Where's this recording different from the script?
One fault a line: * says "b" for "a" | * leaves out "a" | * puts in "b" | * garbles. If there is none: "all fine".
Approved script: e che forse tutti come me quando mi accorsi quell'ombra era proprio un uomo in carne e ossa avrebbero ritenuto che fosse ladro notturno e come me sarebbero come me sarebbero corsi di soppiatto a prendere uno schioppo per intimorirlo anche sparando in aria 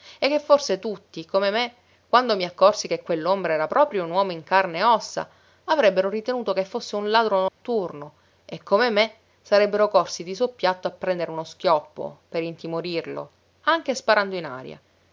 * puts in "che"
* puts in "un"
* leaves out "come me sarebbero"